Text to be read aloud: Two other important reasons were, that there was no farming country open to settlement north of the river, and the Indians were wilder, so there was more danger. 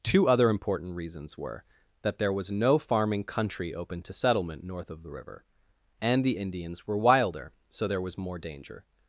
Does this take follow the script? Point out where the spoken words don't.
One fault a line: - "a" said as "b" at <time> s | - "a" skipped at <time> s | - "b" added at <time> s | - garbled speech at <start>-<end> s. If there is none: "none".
none